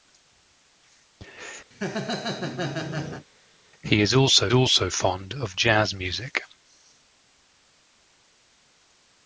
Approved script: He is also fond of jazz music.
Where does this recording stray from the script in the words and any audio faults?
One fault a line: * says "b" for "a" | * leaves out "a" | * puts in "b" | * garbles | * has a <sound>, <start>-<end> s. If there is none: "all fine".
* has a laugh, 1.7-3.3 s
* puts in "also"